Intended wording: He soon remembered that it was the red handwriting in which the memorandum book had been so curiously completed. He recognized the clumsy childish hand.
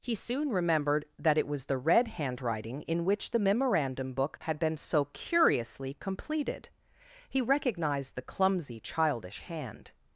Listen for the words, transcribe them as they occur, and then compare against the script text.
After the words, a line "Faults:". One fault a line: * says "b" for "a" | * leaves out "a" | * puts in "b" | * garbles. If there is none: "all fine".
He soon remembered that it was the red handwriting in which the memorandum book had been so curiously completed. He recognized the clumsy childish hand.
Faults:
all fine